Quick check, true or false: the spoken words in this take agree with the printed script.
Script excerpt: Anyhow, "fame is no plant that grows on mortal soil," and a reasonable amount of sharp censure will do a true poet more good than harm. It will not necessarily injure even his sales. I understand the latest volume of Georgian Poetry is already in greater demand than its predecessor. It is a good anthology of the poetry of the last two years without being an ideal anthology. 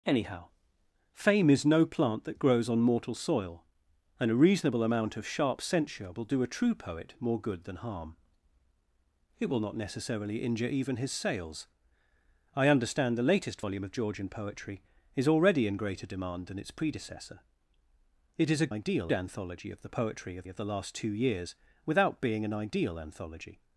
false